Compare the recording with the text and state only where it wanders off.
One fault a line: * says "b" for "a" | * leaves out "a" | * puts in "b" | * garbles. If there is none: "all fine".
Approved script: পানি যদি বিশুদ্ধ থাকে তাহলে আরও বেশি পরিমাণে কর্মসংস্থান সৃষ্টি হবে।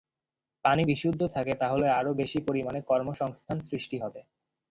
* leaves out "যদি"